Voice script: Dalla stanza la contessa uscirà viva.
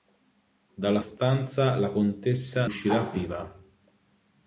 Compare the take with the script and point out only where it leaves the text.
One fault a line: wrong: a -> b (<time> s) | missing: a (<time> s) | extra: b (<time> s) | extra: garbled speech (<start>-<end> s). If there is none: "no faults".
no faults